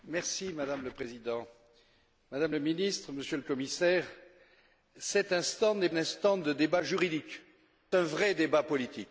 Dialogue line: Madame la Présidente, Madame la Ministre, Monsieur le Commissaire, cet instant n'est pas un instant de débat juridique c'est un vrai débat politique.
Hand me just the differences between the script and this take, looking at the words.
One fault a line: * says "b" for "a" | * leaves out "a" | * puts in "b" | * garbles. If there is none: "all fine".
* leaves out "pas"
* leaves out "c'est"